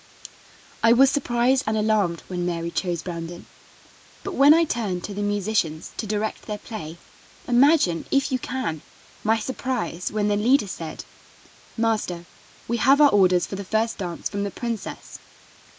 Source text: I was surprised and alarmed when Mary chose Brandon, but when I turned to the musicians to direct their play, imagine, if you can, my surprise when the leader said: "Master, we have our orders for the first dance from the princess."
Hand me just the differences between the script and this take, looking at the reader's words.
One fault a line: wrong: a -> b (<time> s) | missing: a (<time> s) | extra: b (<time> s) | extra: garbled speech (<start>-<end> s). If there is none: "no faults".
no faults